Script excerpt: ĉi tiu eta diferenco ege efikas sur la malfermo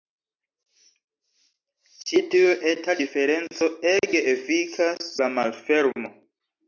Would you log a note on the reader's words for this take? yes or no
yes